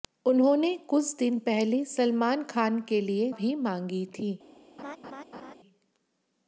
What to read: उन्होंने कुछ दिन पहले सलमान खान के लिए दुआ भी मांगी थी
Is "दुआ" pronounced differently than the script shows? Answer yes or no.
yes